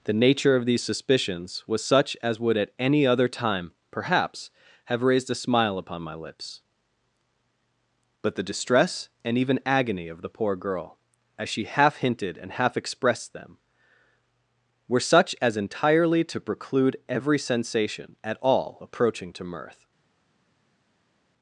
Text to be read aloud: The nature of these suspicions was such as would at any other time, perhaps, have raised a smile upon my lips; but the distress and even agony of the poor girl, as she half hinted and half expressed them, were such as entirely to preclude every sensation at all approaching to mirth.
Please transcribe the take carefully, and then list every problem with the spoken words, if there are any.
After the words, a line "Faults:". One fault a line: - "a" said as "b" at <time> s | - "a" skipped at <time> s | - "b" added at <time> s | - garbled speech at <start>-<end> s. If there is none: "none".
The nature of these suspicions was such as would at any other time, perhaps, have raised a smile upon my lips; but the distress and even agony of the poor girl, as she half hinted and half expressed them, were such as entirely to preclude every sensation at all approaching to mirth.
Faults:
none